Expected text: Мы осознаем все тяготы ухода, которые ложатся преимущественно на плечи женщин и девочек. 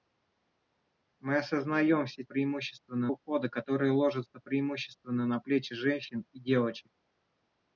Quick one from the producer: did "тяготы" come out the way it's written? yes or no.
no